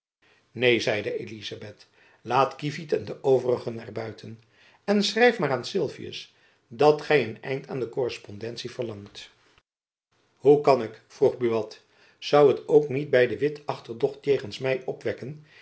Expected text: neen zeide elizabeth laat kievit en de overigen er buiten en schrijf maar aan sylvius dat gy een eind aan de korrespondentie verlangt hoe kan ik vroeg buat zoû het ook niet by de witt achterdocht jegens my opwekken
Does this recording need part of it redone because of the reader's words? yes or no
no